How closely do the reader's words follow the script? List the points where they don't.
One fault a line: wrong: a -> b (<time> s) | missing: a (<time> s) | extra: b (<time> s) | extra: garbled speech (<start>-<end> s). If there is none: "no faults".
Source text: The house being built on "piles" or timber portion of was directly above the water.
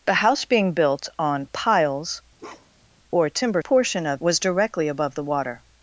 no faults